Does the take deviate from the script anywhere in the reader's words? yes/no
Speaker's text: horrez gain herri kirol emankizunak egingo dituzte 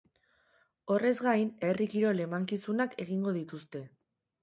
no